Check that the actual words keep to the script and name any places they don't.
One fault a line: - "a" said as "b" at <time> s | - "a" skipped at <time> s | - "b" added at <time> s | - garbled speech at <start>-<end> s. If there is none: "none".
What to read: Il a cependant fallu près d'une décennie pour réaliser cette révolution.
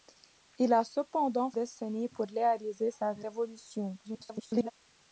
- "fallu près d'une" skipped at 1.5 s
- garbled speech at 4.0-4.7 s